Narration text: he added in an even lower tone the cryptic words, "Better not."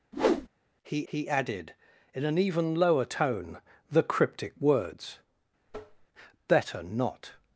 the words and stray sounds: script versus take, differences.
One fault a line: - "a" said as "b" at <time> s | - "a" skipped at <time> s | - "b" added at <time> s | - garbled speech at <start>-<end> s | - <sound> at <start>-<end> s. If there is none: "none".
- whoosh at 0.1-0.5 s
- "he" added at 1.0 s
- tap at 5.7-6.1 s